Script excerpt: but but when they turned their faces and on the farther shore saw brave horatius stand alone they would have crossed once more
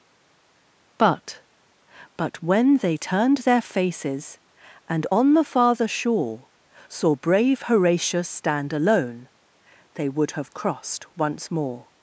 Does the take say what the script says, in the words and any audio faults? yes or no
yes